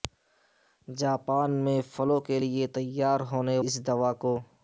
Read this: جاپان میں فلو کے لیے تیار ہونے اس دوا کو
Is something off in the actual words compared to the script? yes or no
no